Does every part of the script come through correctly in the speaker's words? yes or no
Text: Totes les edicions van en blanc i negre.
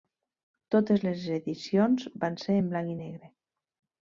no